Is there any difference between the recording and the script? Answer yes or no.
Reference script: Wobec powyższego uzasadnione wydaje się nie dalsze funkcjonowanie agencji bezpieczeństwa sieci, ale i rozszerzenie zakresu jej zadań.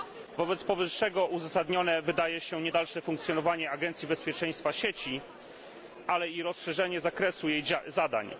no